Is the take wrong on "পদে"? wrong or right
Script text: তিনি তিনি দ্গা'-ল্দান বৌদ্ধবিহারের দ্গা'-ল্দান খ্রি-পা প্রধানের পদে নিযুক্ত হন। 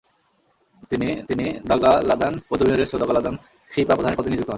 right